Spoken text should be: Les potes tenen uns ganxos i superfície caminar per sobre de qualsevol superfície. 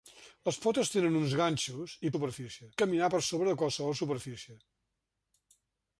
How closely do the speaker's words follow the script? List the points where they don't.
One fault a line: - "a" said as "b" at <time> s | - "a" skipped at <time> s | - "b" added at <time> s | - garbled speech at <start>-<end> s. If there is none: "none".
none